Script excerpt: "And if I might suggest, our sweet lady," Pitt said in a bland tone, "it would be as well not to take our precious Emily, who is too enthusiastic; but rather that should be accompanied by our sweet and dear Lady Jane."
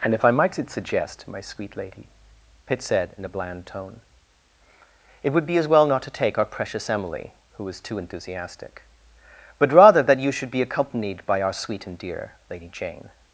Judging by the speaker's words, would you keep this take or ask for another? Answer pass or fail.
fail